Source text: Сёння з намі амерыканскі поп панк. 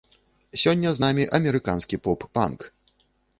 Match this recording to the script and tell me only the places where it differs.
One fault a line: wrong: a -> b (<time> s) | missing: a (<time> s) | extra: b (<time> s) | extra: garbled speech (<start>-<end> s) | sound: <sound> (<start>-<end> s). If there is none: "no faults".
no faults